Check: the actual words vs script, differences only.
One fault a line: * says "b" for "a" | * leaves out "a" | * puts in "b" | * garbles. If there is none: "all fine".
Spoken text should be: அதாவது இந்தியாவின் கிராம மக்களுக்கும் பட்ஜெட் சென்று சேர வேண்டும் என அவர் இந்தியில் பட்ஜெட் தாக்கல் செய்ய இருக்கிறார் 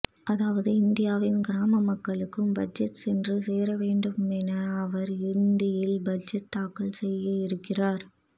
all fine